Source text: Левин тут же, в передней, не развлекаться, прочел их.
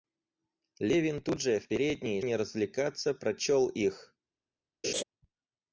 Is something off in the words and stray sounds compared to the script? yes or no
yes